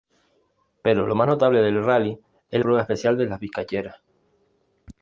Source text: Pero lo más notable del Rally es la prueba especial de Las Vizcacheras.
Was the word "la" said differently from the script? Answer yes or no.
yes